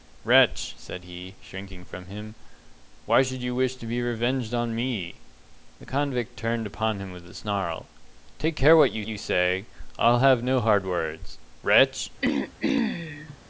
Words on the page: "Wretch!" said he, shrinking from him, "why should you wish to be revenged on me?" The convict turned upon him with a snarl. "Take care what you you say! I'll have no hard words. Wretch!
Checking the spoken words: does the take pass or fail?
pass